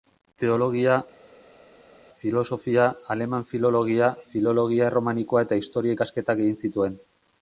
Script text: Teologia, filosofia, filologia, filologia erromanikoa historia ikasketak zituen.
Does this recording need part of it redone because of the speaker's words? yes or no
yes